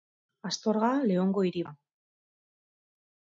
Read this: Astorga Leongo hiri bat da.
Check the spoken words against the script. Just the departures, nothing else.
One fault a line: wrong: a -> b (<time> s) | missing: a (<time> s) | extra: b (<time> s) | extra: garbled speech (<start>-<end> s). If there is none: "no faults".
missing: bat (1.6 s)